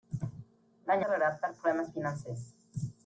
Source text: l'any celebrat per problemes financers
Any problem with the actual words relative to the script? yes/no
no